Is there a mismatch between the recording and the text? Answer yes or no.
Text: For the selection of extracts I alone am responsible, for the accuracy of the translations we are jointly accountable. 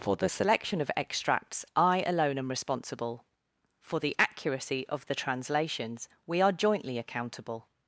no